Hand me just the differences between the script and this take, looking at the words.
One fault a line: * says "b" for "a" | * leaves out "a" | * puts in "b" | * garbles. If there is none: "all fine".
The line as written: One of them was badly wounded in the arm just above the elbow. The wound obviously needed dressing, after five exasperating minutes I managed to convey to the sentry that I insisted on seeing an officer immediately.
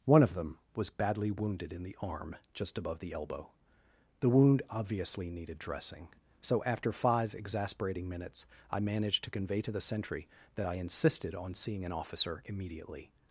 * puts in "so"